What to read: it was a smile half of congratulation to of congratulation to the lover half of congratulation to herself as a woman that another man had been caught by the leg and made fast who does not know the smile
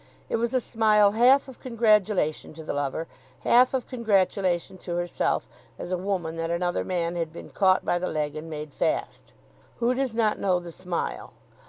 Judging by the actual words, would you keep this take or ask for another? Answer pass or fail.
fail